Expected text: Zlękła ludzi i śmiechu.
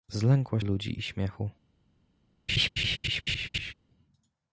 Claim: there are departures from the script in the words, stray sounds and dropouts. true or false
true